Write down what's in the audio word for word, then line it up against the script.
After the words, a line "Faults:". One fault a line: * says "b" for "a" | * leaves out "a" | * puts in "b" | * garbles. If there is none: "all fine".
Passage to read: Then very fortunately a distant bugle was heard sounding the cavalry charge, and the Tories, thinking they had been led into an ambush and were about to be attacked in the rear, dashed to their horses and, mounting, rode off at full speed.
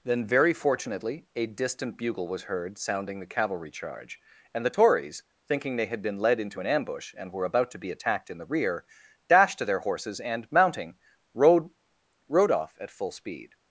Then very fortunately a distant bugle was heard sounding the cavalry charge, and the Tories, thinking they had been led into an ambush and were about to be attacked in the rear, dashed to their horses and, mounting, rode rode off at full speed.
Faults:
* puts in "rode"